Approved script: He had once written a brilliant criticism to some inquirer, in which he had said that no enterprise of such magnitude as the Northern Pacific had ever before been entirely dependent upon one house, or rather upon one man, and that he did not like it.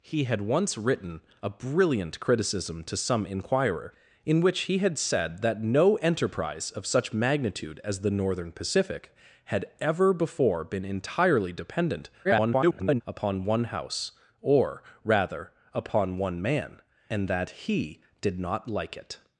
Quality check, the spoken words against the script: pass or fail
fail